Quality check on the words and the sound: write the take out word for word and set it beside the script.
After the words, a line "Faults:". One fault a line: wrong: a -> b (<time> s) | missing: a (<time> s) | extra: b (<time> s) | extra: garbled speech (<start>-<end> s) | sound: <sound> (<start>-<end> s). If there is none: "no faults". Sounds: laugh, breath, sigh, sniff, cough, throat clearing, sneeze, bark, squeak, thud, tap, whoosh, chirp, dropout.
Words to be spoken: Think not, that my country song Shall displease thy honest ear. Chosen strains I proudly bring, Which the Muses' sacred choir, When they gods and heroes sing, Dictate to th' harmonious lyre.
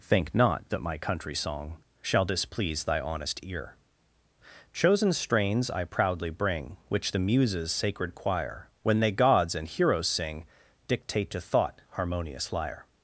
Think not, that my country song Shall displease thy honest ear. Chosen strains I proudly bring, Which the Muses' sacred choir, When they gods and heroes sing, Dictate to thought' harmonious lyre.
Faults:
wrong: th -> thought (11.4 s)